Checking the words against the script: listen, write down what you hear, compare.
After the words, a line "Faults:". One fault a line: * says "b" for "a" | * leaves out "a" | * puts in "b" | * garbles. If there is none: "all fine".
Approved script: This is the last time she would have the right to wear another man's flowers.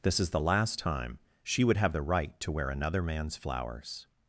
This is the last time she would have the right to wear another man's flowers.
Faults:
all fine